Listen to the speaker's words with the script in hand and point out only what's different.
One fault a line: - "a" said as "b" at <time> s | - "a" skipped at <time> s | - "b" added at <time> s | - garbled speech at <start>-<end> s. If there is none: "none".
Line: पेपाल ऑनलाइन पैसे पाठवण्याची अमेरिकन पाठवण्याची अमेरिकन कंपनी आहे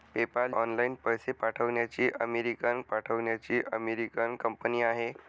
none